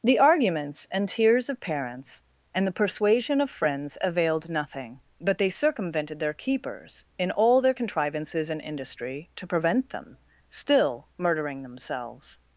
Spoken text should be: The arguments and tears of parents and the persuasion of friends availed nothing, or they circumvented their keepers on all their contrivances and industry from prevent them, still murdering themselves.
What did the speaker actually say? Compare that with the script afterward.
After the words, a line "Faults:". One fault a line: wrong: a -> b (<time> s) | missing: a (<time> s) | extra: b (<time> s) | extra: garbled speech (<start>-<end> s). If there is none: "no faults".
The arguments and tears of parents and the persuasion of friends availed nothing, but they circumvented their keepers in all their contrivances and industry to prevent them, still murdering themselves.
Faults:
wrong: or -> but (5.2 s)
wrong: on -> in (7.2 s)
wrong: from -> to (9.3 s)